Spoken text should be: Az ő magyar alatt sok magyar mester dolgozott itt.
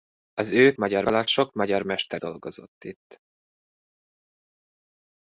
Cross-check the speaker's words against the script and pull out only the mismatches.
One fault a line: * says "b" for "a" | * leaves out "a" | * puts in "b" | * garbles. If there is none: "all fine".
all fine